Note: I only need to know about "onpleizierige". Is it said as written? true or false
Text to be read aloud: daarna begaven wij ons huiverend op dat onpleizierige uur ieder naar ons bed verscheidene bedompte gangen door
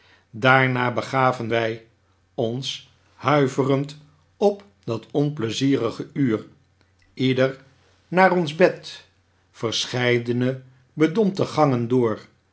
true